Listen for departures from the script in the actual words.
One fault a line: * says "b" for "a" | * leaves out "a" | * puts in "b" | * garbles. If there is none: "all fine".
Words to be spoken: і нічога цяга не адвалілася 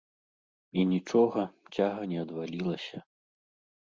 all fine